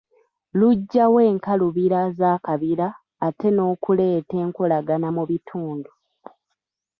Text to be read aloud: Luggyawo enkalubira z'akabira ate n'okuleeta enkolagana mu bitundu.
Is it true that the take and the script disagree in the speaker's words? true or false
false